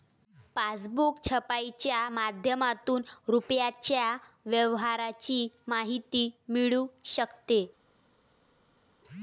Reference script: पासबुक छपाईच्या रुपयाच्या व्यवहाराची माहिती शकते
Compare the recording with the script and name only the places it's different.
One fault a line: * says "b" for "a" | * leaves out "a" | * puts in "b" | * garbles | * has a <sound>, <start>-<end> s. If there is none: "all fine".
* puts in "माध्यमातून"
* puts in "मिळू"